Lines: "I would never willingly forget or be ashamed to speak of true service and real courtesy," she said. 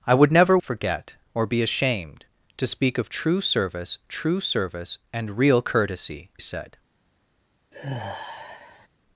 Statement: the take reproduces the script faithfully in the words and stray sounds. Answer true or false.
false